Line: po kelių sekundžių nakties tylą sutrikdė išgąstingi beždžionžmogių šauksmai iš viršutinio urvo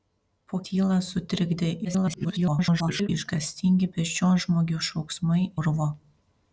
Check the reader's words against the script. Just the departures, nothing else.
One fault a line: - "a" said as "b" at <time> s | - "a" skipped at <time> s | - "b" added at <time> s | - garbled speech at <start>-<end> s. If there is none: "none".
- "kelių sekundžių nakties" skipped at 0.6 s
- garbled speech at 1.8-3.1 s
- "iš viršutinio" skipped at 5.4 s